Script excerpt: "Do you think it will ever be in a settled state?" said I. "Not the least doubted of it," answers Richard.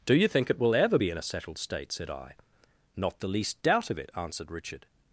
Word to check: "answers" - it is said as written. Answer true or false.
false